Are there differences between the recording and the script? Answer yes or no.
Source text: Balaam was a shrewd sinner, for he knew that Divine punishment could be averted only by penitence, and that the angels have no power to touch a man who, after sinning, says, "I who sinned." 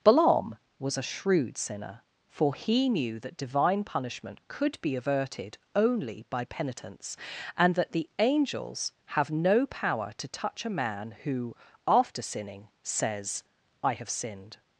yes